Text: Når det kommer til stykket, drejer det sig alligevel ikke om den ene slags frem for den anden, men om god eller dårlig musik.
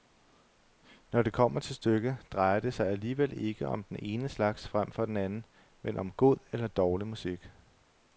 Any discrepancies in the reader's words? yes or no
no